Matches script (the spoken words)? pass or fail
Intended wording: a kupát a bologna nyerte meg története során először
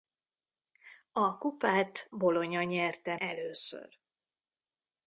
fail